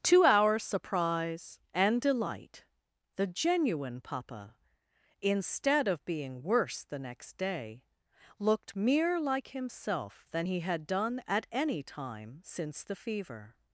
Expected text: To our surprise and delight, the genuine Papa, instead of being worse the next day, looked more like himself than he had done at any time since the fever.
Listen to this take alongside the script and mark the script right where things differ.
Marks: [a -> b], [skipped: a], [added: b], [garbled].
To our surprise and delight, the genuine Papa, instead of being worse the next day, looked [more -> mere] like himself than he had done at any time since the fever.